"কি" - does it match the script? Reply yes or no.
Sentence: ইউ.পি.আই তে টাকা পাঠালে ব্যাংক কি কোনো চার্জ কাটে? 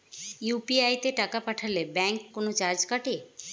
no